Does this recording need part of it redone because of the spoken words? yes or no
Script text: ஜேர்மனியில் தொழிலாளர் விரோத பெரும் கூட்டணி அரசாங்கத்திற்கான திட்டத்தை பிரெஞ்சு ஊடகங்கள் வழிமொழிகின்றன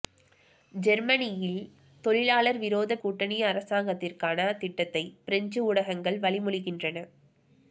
yes